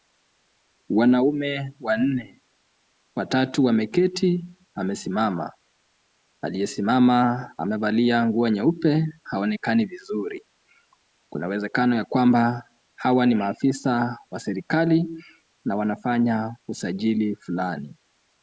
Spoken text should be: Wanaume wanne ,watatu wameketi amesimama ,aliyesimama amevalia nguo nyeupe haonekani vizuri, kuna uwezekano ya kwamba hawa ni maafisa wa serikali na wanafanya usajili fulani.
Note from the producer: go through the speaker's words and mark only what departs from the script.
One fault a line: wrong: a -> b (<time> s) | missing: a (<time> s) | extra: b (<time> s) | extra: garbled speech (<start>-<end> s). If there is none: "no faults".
no faults